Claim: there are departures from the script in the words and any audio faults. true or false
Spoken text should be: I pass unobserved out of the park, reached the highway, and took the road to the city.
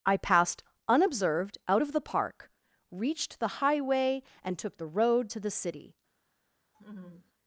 true